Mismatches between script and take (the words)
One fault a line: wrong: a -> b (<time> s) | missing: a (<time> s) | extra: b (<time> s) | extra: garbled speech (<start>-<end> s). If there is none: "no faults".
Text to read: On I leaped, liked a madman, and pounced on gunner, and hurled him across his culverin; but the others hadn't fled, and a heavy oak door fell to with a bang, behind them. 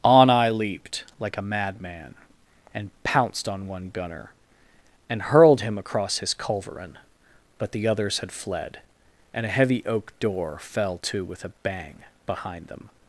wrong: liked -> like (1.2 s)
extra: one (3.7 s)
wrong: hadn't -> had (8.2 s)